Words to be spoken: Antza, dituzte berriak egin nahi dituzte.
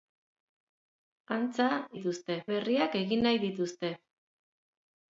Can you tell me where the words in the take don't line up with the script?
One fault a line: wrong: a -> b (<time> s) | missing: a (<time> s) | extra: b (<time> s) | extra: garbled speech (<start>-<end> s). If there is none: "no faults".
no faults